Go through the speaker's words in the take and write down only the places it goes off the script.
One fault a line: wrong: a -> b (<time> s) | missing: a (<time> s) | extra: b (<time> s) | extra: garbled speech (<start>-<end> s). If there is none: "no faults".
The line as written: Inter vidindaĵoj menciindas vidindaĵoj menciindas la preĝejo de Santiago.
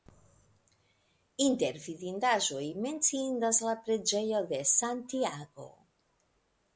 missing: vidindaĵoj menciindas (3.6 s)